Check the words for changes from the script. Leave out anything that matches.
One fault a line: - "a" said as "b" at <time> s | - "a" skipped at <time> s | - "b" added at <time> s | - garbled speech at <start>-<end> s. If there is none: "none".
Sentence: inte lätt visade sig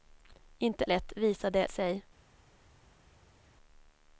none